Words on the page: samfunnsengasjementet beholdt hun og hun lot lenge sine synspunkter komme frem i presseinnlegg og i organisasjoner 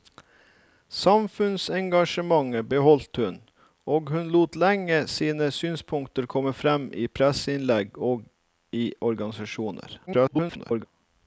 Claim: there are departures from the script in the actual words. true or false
true